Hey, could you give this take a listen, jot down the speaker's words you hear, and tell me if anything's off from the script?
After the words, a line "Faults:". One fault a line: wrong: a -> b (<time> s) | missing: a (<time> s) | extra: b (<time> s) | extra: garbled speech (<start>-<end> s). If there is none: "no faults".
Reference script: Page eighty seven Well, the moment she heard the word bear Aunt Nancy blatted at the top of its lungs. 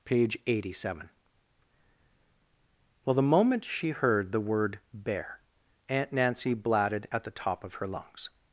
Page eighty seven Well, the moment she heard the word bear Aunt Nancy blatted at the top of her lungs.
Faults:
wrong: its -> her (7.7 s)